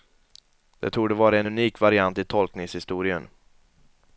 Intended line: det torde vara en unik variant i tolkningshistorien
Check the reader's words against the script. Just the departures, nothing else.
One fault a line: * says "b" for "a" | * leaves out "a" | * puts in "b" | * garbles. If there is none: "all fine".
all fine